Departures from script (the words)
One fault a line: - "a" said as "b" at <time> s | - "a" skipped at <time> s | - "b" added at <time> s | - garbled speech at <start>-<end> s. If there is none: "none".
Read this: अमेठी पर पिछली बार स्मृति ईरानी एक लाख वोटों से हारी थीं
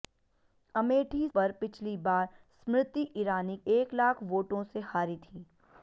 none